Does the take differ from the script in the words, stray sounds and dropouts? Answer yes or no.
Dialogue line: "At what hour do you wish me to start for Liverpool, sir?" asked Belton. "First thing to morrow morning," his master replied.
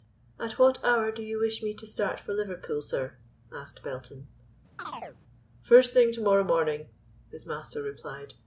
yes